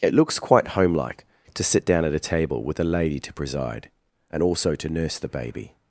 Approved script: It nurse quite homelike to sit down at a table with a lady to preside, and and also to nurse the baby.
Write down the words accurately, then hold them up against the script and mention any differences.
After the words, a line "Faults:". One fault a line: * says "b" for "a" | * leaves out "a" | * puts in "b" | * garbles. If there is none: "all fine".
It looks quite homelike to sit down at a table with a lady to preside, and also to nurse the baby.
Faults:
* says "looks" for "nurse"
* leaves out "and"